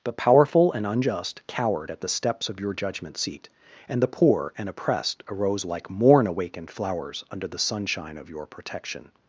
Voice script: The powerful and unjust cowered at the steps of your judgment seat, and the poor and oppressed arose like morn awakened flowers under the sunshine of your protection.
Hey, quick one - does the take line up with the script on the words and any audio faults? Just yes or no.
yes